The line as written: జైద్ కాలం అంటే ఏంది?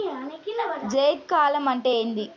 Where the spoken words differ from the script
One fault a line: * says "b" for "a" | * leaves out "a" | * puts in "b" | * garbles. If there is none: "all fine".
all fine